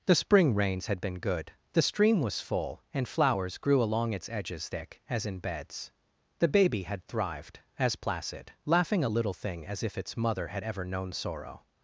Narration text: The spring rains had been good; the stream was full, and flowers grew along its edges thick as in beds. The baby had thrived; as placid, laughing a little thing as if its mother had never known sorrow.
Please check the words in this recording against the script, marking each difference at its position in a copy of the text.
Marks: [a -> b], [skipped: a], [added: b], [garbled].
The spring rains had been good; the stream was full, and flowers grew along its edges thick as in beds. The baby had thrived; as placid, laughing a little thing as if its mother had [never -> ever] known sorrow.